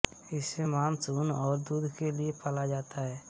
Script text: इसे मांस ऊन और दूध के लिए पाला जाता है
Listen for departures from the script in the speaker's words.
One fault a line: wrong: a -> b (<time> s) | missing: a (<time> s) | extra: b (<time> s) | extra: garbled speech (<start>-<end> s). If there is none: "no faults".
no faults